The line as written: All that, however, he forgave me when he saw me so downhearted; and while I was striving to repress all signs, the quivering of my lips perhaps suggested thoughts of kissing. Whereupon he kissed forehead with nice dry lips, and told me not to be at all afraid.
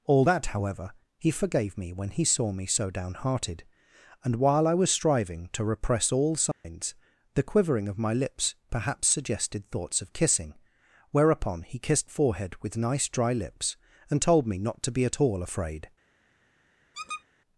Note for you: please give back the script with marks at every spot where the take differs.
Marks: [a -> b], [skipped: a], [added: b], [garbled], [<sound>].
All that, however, he forgave me when he saw me so downhearted; and while I was striving to repress all signs, [dropout] the quivering of my lips perhaps suggested thoughts of kissing. Whereupon he kissed forehead with nice dry lips, and told me not to be at all afraid. [squeak]